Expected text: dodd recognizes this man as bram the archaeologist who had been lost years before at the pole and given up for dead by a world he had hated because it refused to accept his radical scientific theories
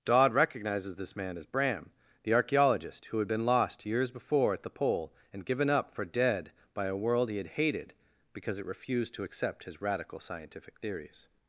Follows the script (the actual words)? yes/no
yes